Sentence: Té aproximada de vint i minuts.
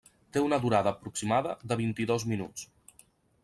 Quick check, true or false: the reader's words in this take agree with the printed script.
false